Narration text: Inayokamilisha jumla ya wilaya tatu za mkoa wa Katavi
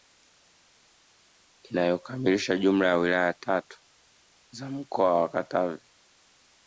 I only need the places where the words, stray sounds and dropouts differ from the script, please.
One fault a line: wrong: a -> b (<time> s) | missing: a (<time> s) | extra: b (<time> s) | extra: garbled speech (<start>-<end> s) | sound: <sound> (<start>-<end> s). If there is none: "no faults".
no faults